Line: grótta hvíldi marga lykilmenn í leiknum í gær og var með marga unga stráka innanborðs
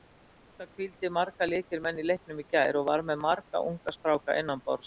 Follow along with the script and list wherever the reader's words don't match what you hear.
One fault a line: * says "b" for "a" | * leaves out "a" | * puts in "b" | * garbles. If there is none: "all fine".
all fine